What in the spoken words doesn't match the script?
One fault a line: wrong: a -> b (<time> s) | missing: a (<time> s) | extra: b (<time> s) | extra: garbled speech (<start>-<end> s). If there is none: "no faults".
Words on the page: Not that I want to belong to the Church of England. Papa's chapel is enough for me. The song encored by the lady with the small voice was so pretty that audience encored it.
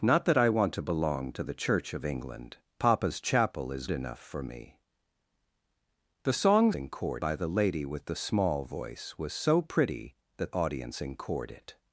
no faults